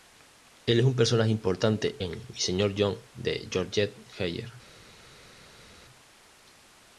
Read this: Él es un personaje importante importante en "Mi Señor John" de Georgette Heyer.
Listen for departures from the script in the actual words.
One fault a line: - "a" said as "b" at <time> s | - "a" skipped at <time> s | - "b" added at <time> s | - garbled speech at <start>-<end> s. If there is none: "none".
- "importante" skipped at 2.0 s